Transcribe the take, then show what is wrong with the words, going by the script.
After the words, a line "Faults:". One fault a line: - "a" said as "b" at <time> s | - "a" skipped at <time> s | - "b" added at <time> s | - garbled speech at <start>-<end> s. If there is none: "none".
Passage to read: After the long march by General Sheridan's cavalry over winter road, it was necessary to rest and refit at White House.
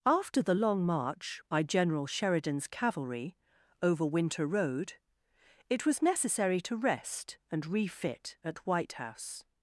After the long march by General Sheridan's cavalry over winter road, it was necessary to rest and refit at White House.
Faults:
none